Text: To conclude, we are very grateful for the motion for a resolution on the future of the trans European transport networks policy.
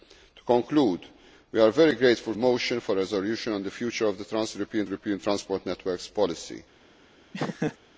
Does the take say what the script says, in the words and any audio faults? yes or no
no